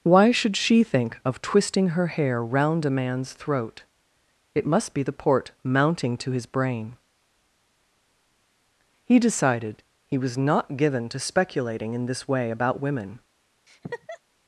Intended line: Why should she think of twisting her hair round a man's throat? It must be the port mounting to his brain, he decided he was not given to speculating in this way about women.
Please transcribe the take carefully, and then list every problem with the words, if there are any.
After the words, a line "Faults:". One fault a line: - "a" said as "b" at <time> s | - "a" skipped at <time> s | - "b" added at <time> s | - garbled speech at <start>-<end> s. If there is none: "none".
Why should she think of twisting her hair round a man's throat? It must be the port mounting to his brain, he decided he was not given to speculating in this way about women.
Faults:
none